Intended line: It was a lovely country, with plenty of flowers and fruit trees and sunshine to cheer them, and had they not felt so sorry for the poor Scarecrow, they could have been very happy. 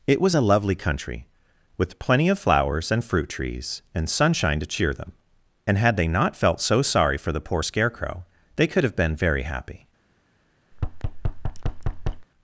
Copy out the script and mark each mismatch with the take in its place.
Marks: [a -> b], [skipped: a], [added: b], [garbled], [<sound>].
It was a lovely country, with plenty of flowers and fruit trees and sunshine to cheer them, and had they not felt so sorry for the poor Scarecrow, they could have been very happy. [thud]